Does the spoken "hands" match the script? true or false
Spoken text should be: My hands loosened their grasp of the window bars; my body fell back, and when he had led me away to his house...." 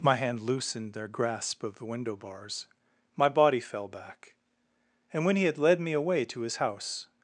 false